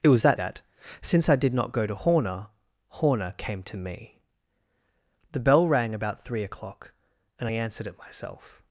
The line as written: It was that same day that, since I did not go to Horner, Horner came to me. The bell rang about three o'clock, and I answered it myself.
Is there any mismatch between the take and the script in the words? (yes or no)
yes